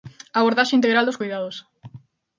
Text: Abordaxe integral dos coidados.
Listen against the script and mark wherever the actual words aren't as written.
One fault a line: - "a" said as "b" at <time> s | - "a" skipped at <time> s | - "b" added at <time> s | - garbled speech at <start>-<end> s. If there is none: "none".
none